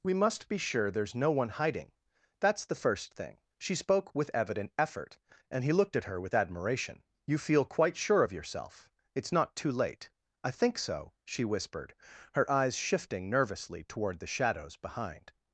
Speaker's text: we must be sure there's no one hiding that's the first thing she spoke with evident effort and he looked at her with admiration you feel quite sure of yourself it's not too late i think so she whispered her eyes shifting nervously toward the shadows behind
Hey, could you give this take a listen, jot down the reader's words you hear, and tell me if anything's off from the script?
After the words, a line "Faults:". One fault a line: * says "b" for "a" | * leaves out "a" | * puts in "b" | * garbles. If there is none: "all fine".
we must be sure there's no one hiding that's the first thing she spoke with evident effort and he looked at her with admiration you feel quite sure of yourself it's not too late i think so she whispered her eyes shifting nervously toward the shadows behind
Faults:
all fine